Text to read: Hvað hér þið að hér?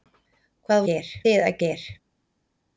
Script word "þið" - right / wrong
right